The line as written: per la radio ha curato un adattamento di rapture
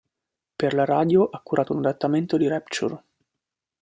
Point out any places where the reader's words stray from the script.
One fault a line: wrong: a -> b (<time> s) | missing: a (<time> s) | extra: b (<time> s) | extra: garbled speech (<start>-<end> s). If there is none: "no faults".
no faults